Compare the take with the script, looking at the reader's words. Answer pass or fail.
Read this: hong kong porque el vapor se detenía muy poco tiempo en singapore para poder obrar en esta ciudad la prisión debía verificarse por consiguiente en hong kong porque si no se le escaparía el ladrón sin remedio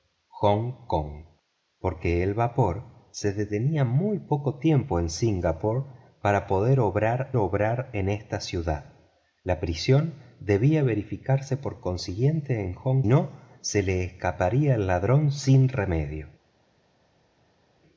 fail